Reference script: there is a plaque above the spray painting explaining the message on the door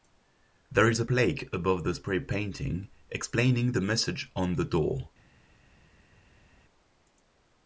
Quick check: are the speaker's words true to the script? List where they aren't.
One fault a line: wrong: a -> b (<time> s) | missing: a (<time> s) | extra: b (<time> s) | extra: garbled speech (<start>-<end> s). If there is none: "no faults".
no faults